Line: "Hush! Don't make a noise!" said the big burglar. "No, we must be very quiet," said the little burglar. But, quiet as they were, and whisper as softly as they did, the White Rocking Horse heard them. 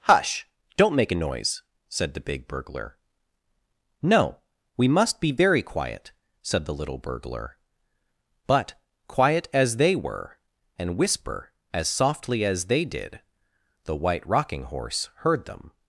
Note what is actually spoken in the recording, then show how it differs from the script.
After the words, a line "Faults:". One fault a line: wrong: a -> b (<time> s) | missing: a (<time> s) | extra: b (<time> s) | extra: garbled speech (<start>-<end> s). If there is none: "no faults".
"Hush! Don't make a noise!" said the big burglar. "No, we must be very quiet," said the little burglar. But, quiet as they were, and whisper as softly as they did, the White Rocking Horse heard them.
Faults:
no faults